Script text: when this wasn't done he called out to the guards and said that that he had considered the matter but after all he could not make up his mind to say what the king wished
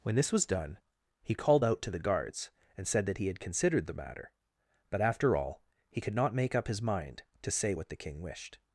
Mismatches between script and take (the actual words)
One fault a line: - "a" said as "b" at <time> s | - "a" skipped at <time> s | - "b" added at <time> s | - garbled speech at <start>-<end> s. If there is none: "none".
- "wasn't" said as "was" at 0.3 s
- "that" skipped at 3.2 s